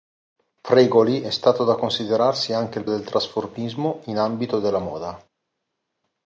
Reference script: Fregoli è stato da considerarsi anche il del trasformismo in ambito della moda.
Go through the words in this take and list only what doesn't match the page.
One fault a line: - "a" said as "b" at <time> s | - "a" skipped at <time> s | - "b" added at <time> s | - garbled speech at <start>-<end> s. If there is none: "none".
none